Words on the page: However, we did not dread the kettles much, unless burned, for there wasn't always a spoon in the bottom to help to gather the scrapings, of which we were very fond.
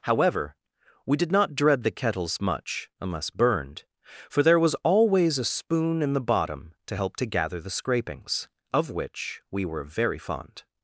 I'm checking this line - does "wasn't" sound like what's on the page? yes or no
no